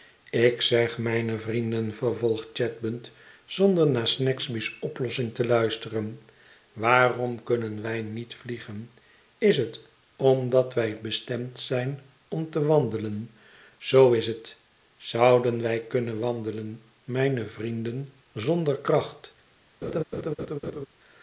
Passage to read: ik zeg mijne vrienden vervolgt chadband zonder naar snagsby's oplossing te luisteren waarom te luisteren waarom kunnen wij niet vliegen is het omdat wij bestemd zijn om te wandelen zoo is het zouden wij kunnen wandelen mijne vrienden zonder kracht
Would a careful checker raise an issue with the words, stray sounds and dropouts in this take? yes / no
yes